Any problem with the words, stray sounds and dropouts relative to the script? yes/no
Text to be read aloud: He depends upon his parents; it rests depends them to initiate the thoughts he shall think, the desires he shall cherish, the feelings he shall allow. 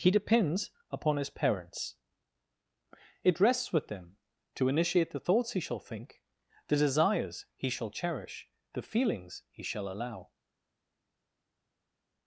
yes